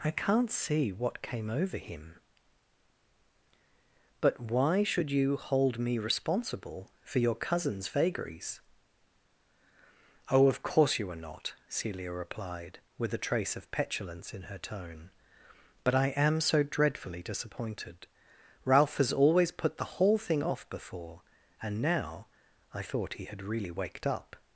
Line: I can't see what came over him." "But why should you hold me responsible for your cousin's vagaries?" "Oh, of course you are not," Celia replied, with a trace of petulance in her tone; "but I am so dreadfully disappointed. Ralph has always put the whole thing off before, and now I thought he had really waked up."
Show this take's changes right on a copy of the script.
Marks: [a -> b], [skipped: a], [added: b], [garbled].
I can't see what came over him." "But why should you hold me responsible for your cousin's vagaries?" "Oh, of course you are not," Celia replied, with a trace of petulance in her tone; "but I am so dreadfully disappointed. Ralph has always put the whole thing off before, and now I thought he had really waked up."